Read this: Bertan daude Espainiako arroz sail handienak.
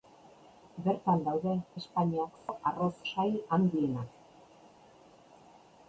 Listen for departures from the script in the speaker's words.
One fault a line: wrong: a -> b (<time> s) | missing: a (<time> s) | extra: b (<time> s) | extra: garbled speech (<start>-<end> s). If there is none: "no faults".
no faults